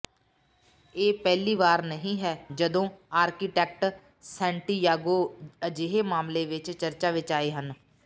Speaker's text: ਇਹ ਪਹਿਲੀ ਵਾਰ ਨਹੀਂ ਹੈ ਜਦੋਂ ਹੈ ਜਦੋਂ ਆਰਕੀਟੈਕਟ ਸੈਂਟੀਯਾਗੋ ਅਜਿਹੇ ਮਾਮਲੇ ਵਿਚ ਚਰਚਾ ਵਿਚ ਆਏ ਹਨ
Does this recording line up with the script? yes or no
no